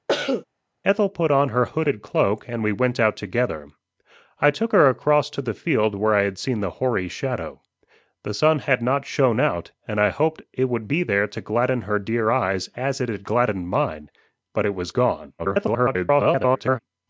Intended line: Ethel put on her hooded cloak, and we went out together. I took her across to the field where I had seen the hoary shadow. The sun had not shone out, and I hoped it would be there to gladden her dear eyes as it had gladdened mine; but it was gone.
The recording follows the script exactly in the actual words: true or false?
false